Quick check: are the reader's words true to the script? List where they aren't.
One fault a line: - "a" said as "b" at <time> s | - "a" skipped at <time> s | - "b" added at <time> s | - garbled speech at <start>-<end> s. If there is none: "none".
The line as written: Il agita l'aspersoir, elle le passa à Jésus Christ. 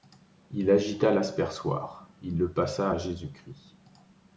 - "elle" said as "il" at 2.2 s